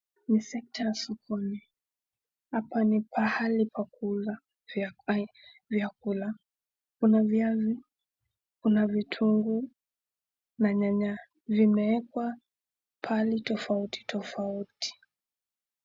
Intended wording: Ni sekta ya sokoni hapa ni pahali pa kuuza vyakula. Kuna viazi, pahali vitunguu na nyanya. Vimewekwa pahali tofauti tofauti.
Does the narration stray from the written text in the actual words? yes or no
yes